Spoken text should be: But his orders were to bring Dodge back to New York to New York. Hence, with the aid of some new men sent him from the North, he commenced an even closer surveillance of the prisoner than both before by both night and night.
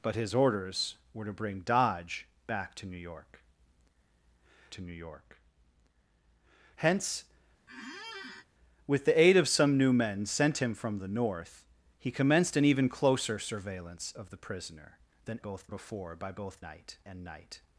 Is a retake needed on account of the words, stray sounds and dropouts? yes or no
yes